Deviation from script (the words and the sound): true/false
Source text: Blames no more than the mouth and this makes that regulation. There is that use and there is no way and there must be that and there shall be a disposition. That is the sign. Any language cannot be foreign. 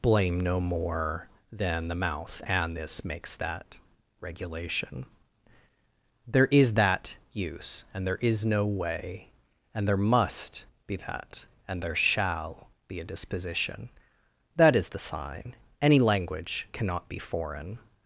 true